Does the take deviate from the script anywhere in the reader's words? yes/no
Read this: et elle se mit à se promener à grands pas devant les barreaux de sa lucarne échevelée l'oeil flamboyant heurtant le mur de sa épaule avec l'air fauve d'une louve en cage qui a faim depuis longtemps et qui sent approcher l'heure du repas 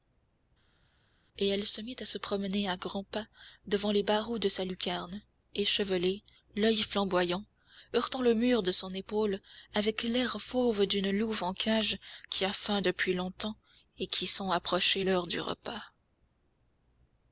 yes